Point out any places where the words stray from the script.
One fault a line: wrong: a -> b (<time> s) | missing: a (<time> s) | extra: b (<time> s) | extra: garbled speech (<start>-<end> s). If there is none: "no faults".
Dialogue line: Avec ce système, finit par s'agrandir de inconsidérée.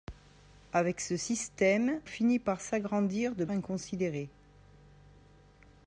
no faults